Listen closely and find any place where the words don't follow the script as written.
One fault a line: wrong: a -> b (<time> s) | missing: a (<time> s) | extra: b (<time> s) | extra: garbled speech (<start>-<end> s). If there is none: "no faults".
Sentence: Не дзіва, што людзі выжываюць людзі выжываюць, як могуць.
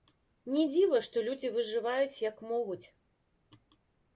missing: людзі выжываюць (2.2 s)